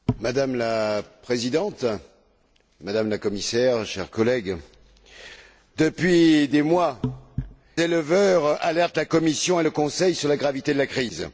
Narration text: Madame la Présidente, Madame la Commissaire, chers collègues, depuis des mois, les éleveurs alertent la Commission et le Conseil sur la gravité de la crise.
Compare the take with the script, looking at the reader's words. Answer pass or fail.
fail